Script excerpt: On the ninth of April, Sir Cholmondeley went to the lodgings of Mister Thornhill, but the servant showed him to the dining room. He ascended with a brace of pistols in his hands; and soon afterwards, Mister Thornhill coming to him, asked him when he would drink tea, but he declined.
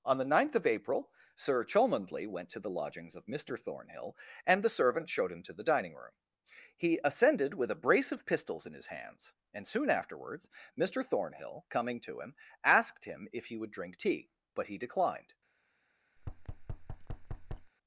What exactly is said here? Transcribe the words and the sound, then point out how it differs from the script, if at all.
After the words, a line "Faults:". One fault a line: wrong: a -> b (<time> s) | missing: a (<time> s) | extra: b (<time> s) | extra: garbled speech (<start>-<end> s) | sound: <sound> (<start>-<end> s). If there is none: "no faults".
On the ninth of April, Sir Cholmondeley went to the lodgings of Mister Thornhill, and the servant showed him to the dining room. He ascended with a brace of pistols in his hands; and soon afterwards, Mister Thornhill coming to him, asked him if he would drink tea, but he declined.
Faults:
wrong: but -> and (4.5 s)
wrong: when -> if (13.3 s)
sound: thud (16.2-17.7 s)